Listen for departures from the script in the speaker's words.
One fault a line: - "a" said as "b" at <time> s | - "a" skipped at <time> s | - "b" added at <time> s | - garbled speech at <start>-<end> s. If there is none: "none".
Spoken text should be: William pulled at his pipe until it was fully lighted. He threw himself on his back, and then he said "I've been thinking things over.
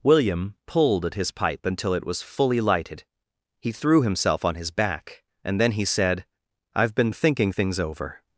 none